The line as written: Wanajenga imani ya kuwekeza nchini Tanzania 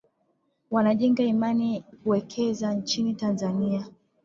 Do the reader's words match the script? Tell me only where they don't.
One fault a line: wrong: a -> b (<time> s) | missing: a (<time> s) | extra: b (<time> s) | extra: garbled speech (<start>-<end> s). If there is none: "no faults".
missing: ya (1.8 s)